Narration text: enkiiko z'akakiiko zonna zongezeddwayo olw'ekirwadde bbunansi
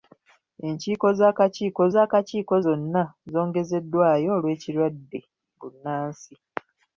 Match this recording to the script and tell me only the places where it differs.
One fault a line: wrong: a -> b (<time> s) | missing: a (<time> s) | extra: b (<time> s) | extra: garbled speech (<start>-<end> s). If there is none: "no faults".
extra: z'akakiiko (1.9 s)